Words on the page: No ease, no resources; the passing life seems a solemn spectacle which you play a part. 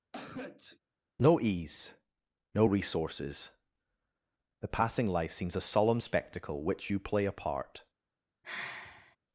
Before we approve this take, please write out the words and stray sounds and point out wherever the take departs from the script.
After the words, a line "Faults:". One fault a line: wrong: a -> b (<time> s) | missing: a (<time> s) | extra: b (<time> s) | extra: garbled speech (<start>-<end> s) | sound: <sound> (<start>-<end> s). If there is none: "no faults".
No ease, no resources; the passing life seems a solemn spectacle which you play a part.
Faults:
sound: sneeze (0.1-0.8 s)
sound: sigh (8.4-9.2 s)